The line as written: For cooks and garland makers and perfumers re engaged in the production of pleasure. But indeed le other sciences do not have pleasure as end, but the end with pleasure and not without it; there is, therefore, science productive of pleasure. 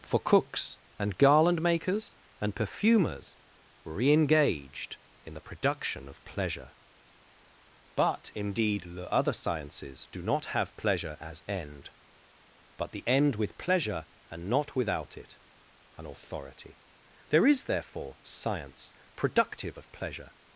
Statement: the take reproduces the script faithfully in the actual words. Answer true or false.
false